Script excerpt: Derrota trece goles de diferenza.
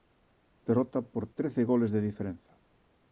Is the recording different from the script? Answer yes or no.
yes